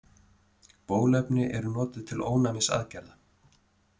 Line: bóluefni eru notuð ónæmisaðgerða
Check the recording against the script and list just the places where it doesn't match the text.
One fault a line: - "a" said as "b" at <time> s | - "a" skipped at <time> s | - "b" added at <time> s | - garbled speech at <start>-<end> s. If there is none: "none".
- "til" added at 2.1 s